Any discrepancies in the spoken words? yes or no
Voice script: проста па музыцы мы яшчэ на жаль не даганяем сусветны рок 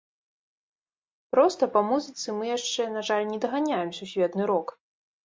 no